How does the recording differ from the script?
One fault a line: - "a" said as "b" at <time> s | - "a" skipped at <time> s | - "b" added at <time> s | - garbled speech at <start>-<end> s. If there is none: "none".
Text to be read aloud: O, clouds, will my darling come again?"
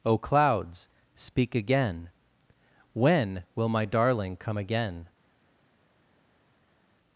- "speak again When" added at 1.1 s